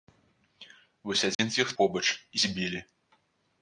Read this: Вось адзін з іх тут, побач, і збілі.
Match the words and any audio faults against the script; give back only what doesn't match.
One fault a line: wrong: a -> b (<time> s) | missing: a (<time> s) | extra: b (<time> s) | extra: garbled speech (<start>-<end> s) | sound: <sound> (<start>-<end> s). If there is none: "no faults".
sound: dropout (1.3-1.4 s)
missing: тут (1.7 s)